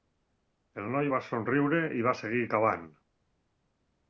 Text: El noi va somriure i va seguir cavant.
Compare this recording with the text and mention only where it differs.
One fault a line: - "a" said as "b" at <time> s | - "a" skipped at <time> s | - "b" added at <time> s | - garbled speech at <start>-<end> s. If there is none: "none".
none